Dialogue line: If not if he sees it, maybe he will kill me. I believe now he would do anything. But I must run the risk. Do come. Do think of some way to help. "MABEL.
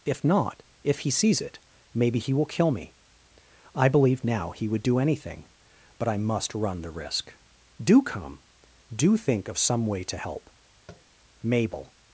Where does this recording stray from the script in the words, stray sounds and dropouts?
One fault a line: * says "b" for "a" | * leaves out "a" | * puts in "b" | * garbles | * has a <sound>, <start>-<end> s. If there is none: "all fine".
* has a tap, 10.9-11.1 s